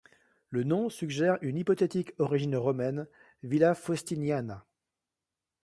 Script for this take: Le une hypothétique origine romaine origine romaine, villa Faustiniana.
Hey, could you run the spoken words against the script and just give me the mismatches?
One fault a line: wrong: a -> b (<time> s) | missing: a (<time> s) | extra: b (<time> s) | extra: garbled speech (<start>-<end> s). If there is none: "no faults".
extra: nom suggère (0.6 s)
missing: origine romaine (3.1 s)